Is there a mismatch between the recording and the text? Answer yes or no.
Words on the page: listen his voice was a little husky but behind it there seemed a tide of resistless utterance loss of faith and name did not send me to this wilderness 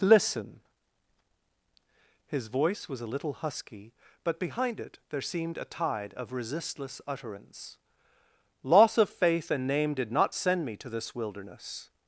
no